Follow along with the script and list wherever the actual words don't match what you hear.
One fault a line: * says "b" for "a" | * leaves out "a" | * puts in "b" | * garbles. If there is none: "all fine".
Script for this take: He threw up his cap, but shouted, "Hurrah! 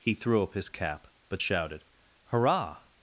all fine